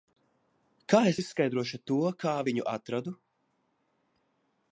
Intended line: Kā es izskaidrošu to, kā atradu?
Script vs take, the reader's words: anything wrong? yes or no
yes